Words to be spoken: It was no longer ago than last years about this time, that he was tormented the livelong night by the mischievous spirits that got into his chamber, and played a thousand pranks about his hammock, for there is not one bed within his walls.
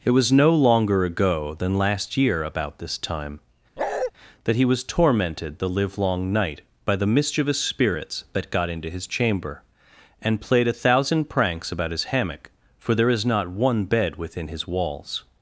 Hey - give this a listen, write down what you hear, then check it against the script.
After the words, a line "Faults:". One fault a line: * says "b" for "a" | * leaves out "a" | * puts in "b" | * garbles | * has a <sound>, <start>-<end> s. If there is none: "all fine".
It was no longer ago than last year about this time, that he was tormented the livelong night by the mischievous spirits that got into his chamber, and played a thousand pranks about his hammock, for there is not one bed within his walls.
Faults:
* says "year" for "years"
* has a bark, 3.8-4.1 s